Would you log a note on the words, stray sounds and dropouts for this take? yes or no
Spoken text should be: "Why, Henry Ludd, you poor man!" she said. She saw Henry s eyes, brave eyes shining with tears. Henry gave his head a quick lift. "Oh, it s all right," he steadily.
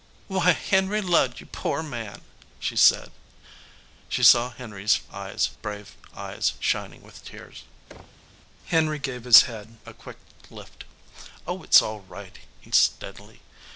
yes